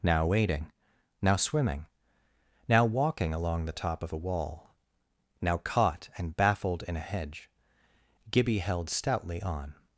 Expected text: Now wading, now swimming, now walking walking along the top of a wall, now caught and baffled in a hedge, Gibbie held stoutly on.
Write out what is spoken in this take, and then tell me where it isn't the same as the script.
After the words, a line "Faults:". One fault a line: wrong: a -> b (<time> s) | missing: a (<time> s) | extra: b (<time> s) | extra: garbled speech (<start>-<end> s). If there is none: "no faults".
Now wading, now swimming, now walking along the top of a wall, now caught and baffled in a hedge, Gibbie held stoutly on.
Faults:
missing: walking (3.3 s)